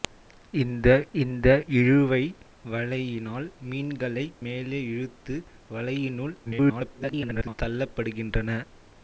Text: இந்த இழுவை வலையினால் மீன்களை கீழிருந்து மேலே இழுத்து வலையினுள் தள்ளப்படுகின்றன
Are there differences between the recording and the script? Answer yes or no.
yes